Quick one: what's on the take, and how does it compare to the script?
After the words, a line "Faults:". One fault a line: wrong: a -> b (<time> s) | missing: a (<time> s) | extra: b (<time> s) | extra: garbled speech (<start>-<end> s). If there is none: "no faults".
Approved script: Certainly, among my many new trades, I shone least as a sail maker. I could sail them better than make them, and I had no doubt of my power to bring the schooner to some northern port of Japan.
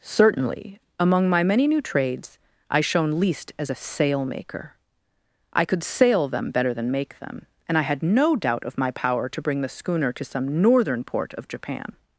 Certainly, among my many new trades, I shone least as a sail maker. I could sail them better than make them, and I had no doubt of my power to bring the schooner to some northern port of Japan.
Faults:
no faults